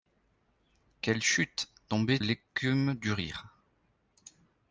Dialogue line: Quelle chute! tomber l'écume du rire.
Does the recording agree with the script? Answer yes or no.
yes